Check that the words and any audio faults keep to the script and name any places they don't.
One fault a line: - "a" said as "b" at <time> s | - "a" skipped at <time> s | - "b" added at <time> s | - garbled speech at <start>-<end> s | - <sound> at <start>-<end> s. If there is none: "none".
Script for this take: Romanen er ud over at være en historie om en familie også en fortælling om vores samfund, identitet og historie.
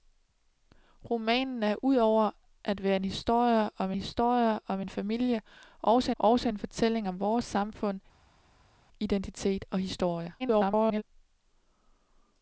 - "historie om" added at 4.0 s
- "også" added at 6.2 s
- garbled speech at 10.4-11.0 s